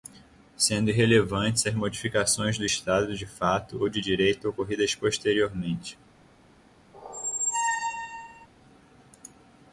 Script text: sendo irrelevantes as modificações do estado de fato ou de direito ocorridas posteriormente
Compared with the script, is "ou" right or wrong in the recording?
right